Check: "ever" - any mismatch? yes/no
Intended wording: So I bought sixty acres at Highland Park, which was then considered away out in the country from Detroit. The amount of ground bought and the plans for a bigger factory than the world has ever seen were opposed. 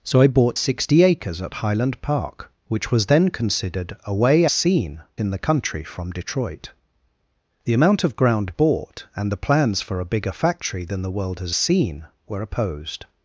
yes